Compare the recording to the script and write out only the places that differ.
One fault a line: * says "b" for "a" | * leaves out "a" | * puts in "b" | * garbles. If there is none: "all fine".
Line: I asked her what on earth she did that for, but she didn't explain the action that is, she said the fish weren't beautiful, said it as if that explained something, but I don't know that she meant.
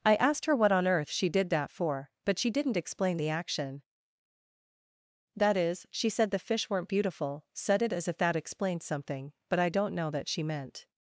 all fine